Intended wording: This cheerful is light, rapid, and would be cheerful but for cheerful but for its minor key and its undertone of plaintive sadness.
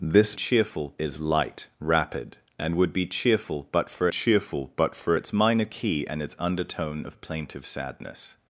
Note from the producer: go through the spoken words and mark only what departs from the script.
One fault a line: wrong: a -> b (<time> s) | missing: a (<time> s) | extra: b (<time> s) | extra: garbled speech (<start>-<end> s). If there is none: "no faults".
no faults